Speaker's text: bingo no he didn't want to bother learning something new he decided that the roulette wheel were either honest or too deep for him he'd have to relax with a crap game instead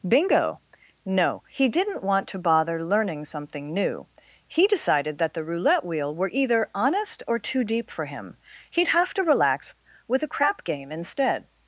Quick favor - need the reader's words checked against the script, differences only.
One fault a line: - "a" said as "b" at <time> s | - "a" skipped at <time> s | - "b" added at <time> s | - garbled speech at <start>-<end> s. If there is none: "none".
none